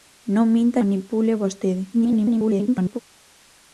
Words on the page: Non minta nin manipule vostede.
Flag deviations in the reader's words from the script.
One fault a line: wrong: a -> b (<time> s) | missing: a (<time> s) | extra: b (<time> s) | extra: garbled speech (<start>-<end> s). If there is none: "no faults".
missing: nin (0.8 s)
extra: garbled speech (1.9-3.0 s)